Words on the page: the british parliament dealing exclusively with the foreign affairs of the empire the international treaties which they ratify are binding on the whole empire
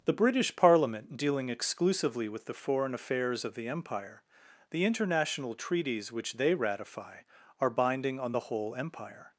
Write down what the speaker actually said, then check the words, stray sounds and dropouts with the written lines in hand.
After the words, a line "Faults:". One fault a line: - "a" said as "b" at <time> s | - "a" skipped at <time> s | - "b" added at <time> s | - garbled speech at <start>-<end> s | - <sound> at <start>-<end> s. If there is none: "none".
the british parliament dealing exclusively with the foreign affairs of the empire the international treaties which they ratify are binding on the whole empire
Faults:
none